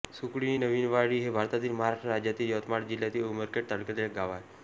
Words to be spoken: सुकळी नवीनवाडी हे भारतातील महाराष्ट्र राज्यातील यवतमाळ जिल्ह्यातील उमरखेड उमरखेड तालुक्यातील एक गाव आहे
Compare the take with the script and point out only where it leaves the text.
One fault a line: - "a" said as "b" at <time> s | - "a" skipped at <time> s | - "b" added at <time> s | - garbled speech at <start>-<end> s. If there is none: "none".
- "उमरखेड" skipped at 3.7 s